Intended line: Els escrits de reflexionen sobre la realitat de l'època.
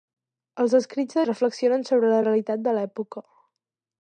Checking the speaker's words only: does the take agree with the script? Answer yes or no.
yes